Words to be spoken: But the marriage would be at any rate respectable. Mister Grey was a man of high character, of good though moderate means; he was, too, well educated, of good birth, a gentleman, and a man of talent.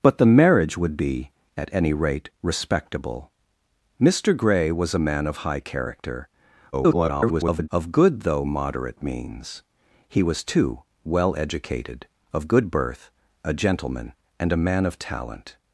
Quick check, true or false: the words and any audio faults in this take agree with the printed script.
false